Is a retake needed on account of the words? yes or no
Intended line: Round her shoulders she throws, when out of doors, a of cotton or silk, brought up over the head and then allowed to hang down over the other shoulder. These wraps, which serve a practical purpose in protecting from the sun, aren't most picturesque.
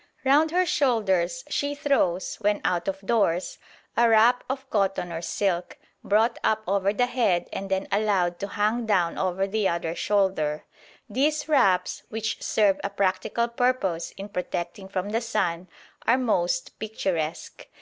yes